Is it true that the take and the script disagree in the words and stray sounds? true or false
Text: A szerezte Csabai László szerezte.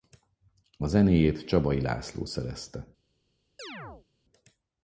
true